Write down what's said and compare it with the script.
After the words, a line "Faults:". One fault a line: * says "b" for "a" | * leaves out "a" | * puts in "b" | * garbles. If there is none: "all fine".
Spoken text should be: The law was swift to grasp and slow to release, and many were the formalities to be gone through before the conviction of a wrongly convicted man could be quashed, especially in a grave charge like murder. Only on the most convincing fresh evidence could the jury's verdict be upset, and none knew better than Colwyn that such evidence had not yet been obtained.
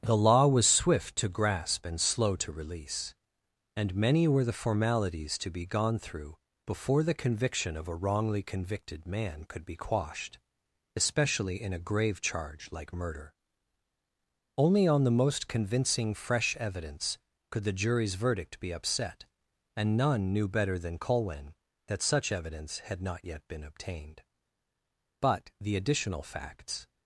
The law was swift to grasp and slow to release, and many were the formalities to be gone through before the conviction of a wrongly convicted man could be quashed, especially in a grave charge like murder. Only on the most convincing fresh evidence could the jury's verdict be upset, and none knew better than Colwyn that such evidence had not yet been obtained. But the additional facts
Faults:
* puts in "But the additional facts"